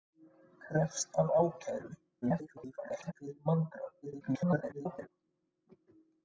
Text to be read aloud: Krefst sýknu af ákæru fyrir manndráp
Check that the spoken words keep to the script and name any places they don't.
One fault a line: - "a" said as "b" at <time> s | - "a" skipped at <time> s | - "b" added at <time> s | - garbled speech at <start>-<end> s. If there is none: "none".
- "sýknu" skipped at 1.1 s
- garbled speech at 2.2-3.1 s
- garbled speech at 4.0-5.1 s